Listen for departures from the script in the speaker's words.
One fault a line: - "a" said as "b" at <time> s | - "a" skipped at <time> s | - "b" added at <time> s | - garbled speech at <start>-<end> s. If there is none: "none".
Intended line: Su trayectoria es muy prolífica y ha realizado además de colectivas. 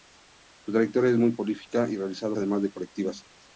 none